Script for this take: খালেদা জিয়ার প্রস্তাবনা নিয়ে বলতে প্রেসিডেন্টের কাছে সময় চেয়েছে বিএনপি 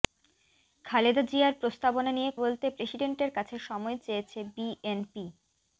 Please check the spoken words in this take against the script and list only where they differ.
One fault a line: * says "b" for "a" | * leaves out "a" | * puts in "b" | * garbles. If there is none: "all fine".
all fine